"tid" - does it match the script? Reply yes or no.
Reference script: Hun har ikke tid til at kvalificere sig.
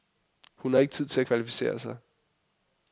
yes